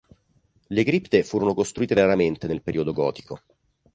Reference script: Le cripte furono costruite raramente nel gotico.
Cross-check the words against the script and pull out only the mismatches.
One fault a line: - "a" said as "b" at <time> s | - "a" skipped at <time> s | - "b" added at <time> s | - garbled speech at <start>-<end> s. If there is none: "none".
- "periodo" added at 2.6 s